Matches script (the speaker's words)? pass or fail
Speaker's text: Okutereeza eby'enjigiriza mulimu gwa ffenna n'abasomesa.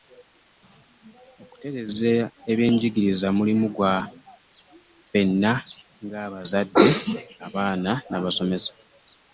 fail